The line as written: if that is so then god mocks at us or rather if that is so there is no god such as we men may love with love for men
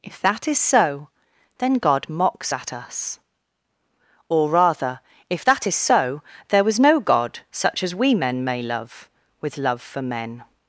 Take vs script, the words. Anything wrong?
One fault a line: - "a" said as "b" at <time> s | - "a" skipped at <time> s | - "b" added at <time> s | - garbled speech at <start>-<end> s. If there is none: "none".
- "is" said as "was" at 6.6 s